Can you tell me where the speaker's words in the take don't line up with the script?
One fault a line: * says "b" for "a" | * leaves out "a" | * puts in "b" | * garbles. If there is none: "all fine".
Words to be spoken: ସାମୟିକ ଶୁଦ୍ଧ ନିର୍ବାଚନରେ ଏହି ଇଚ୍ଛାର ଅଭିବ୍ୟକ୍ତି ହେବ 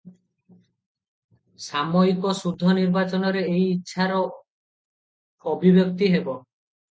all fine